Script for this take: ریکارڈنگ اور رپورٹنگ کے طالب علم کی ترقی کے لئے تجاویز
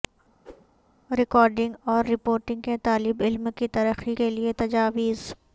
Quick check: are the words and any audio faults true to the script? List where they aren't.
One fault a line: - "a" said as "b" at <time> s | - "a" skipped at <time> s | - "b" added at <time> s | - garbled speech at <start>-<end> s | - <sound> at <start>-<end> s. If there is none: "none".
- whoosh at 0.4-0.7 s